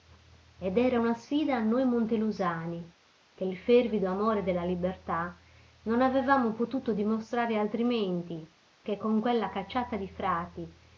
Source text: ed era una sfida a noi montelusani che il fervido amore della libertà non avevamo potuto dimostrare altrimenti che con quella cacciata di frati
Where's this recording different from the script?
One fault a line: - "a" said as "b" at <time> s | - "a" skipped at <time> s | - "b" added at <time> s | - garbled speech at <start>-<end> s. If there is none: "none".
none